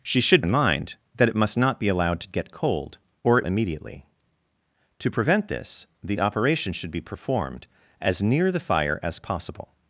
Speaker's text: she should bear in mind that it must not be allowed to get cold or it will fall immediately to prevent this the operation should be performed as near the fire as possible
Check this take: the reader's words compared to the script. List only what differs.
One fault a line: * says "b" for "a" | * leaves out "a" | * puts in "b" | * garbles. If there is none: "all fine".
* leaves out "bear"
* leaves out "will fall"